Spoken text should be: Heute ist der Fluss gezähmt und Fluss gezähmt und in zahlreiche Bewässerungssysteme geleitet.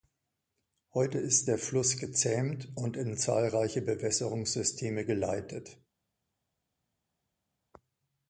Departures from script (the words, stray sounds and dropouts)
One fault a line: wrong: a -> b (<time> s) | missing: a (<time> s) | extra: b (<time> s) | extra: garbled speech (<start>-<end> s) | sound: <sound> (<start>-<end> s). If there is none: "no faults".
missing: Fluss gezähmt und (3.0 s)